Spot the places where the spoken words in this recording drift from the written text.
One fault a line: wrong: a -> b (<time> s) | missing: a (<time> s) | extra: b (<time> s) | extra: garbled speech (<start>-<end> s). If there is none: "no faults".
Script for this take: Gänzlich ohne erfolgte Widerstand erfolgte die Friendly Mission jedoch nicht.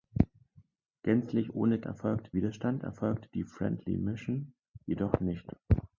no faults